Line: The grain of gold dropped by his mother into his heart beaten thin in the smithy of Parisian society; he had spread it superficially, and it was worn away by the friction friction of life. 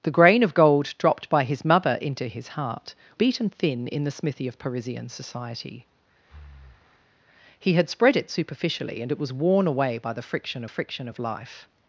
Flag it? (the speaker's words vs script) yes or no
no